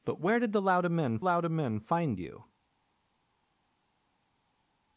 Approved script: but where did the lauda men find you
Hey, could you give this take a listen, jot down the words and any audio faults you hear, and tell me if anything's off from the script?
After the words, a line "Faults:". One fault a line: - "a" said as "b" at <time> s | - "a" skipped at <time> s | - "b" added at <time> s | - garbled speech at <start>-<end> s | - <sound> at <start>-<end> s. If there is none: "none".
but where did the lauda men lauda men find you
Faults:
- "lauda men" added at 1.2 s